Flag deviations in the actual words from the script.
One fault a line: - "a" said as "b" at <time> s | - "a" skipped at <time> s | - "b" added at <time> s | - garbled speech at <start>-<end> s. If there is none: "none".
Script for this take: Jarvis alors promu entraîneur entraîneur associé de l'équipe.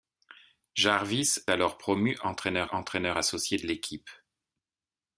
none